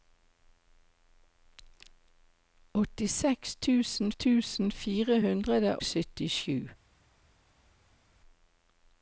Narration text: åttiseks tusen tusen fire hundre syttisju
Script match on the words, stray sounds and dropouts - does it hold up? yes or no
yes